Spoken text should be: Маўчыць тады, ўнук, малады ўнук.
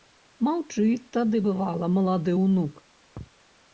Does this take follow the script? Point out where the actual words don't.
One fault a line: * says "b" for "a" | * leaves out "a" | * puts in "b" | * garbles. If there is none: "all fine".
* says "бывала" for "ўнук"